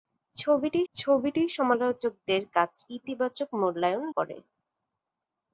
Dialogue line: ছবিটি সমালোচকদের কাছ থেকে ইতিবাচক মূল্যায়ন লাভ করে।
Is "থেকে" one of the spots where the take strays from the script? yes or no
yes